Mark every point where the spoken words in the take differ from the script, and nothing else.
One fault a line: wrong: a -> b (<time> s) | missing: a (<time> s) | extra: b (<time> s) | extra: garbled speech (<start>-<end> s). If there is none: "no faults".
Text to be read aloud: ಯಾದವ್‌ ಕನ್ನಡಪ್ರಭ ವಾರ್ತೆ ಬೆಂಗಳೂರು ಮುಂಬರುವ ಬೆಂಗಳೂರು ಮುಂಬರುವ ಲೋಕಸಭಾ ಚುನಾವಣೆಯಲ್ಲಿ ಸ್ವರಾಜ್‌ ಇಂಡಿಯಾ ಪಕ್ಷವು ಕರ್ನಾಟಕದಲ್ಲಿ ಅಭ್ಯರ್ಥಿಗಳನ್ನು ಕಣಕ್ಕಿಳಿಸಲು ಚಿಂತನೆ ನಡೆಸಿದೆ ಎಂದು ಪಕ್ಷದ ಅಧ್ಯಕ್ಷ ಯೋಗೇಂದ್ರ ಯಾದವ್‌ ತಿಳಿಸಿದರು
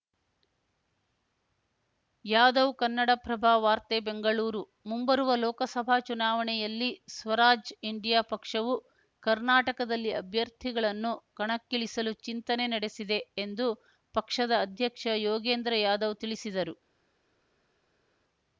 missing: ಬೆಂಗಳೂರು ಮುಂಬರುವ (5.3 s)